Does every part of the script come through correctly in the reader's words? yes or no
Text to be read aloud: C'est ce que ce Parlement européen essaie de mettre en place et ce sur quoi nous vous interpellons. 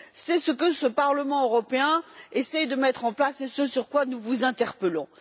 yes